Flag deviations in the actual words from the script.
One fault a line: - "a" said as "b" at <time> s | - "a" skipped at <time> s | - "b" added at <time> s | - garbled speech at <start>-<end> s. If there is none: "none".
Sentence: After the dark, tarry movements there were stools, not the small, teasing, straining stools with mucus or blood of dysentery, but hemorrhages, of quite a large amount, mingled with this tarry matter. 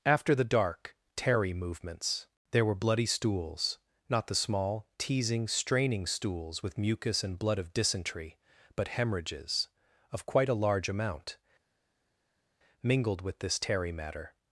- "bloody" added at 2.7 s
- "or" said as "and" at 7.2 s